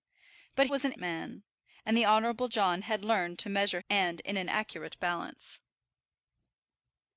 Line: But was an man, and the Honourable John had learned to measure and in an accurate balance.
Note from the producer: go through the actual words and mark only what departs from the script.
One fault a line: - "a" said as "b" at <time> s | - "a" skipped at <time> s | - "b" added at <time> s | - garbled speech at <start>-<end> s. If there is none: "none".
none